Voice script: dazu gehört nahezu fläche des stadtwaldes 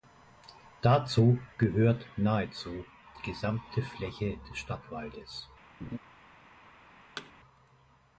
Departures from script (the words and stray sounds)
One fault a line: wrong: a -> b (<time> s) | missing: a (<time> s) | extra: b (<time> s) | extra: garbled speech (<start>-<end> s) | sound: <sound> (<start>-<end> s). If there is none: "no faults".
extra: die gesamte (3.2 s)
sound: laugh (5.8-6.0 s)
sound: thud (7.2-7.3 s)